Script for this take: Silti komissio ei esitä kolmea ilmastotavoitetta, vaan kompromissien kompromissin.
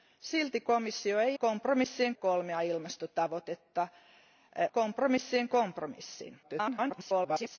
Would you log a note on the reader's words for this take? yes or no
yes